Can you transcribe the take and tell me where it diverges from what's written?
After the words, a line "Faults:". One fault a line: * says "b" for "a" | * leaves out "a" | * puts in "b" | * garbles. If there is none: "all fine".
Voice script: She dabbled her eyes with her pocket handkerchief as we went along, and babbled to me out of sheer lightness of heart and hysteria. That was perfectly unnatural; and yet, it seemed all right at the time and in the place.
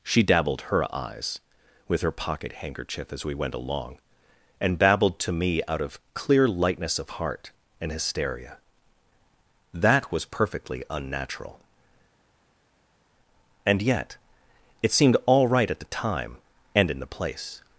She dabbled her eyes with her pocket handkerchief as we went along, and babbled to me out of clear lightness of heart and hysteria. That was perfectly unnatural; and yet, it seemed all right at the time and in the place.
Faults:
* says "clear" for "sheer"